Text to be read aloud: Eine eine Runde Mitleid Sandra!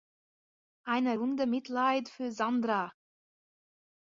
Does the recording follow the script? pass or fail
fail